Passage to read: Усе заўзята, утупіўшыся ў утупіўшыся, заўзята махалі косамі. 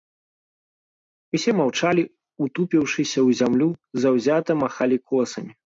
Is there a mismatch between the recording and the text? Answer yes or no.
yes